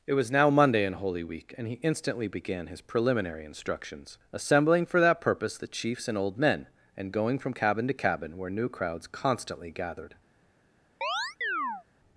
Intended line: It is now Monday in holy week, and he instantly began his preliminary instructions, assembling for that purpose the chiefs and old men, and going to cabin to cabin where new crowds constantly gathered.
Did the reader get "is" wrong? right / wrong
wrong